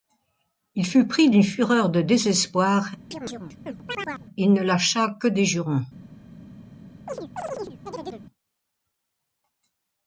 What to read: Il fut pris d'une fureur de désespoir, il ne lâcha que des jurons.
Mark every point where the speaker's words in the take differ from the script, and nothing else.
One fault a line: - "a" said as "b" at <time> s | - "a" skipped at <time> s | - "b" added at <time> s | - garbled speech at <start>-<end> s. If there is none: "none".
none